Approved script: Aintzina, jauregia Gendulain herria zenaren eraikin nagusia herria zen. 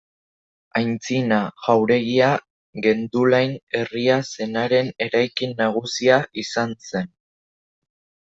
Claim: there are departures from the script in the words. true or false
true